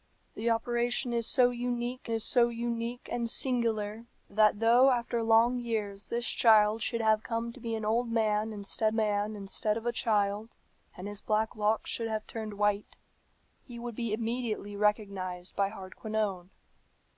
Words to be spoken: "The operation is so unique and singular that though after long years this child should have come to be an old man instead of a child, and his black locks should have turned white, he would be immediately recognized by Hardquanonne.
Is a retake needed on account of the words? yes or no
yes